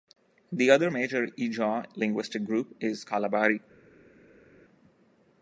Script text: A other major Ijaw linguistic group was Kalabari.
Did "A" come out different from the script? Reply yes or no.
yes